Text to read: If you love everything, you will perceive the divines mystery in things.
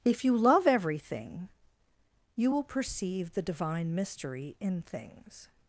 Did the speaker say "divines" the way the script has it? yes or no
no